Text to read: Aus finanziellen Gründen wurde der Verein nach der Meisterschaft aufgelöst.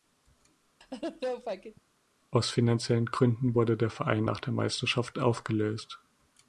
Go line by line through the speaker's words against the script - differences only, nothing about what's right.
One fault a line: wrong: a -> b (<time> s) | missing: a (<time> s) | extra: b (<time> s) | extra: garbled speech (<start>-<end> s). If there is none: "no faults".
no faults